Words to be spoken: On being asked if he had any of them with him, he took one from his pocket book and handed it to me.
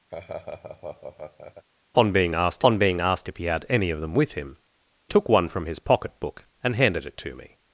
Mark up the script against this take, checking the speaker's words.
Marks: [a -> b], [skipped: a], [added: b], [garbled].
On being asked [added: on being asked] if he had any of them with him, [skipped: he] took one from his pocket book and handed it to me.